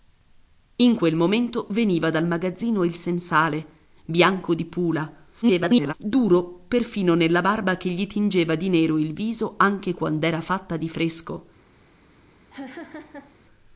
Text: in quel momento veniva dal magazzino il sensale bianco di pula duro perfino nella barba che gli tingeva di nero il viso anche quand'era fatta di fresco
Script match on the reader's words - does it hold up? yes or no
no